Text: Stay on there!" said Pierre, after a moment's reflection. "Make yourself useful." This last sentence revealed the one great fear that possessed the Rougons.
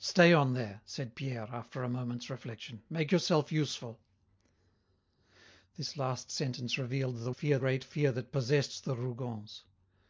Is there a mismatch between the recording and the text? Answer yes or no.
yes